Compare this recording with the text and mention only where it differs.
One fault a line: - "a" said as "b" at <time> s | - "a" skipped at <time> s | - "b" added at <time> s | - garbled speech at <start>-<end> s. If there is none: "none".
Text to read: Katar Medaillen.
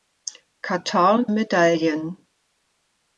none